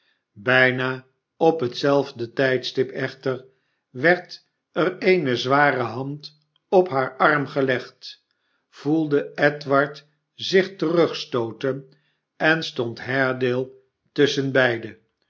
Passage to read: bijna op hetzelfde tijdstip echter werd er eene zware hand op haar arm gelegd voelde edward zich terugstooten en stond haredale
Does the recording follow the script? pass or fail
pass